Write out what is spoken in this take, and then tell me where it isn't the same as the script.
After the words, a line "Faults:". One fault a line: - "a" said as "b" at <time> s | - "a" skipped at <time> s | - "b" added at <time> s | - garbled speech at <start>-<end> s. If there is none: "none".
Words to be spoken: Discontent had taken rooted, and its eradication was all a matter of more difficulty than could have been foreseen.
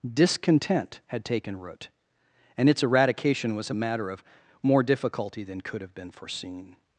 Discontent had taken root, and its eradication was a matter of more difficulty than could have been foreseen.
Faults:
- "rooted" said as "root" at 1.6 s
- "all" skipped at 3.7 s